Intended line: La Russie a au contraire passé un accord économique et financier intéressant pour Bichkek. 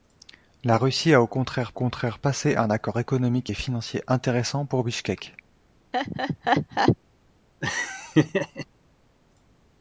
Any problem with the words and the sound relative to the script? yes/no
yes